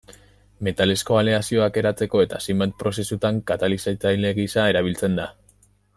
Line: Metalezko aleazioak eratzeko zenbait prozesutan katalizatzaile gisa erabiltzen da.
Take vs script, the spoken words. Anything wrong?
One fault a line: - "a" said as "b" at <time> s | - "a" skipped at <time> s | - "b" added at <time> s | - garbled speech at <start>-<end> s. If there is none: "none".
- "eta" added at 2.2 s